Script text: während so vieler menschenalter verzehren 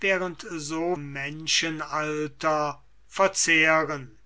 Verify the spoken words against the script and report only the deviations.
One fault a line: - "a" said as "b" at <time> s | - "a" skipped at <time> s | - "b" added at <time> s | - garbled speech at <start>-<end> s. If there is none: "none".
- "vieler" skipped at 0.9 s